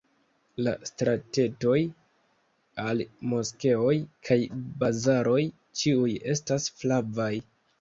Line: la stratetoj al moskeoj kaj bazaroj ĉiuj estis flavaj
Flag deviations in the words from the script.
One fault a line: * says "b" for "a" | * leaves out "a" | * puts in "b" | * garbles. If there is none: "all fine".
* says "estas" for "estis"